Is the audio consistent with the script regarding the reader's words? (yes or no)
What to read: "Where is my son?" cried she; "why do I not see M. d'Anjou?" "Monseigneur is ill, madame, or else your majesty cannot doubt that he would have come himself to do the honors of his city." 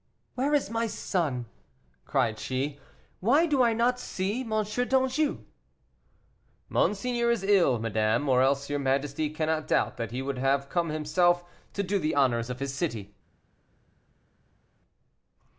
yes